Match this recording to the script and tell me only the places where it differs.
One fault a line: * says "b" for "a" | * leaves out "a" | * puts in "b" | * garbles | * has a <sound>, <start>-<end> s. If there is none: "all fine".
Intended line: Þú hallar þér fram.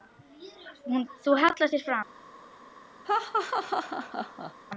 * has a laugh, 3.0-4.5 s